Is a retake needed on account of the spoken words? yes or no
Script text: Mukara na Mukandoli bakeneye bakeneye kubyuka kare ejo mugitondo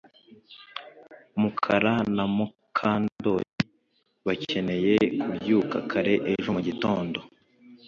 yes